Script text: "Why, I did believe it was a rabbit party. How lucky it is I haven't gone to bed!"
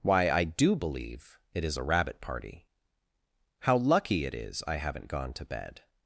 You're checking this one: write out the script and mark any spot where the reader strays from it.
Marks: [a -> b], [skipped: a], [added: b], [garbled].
"Why, I [did -> do] believe it [was -> is] a rabbit party. How lucky it is I haven't gone to bed!"